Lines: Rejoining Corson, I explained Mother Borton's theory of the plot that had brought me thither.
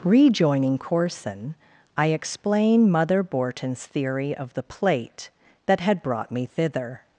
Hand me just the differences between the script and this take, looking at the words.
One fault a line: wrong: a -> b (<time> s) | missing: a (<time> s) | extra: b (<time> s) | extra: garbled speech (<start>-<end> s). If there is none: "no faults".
wrong: explained -> explain (2.1 s)
wrong: plot -> plate (4.6 s)